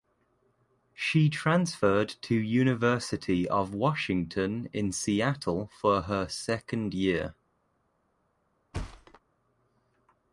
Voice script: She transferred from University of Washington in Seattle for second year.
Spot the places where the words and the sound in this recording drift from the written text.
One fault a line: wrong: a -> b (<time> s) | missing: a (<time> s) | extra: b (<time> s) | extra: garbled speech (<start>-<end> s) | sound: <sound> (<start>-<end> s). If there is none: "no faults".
wrong: from -> to (2.2 s)
extra: her (6.0 s)
sound: thud (8.7-9.2 s)